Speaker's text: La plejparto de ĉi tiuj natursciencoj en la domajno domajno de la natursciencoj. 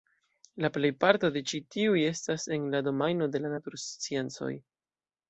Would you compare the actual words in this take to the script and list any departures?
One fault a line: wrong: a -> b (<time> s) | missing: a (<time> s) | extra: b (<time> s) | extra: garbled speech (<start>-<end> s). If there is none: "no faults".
wrong: natursciencoj -> estas (2.0 s)
missing: domajno (3.3 s)